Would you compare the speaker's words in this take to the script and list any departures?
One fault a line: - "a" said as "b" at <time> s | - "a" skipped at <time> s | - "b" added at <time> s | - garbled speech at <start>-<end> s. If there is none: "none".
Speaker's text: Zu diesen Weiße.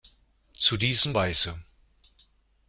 none